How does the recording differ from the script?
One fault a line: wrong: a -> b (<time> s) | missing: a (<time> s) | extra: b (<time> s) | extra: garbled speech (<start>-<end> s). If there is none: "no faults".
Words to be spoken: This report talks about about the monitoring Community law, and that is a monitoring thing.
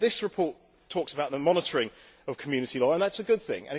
missing: about (1.3 s)
extra: of (2.3 s)
wrong: monitoring -> good (3.2 s)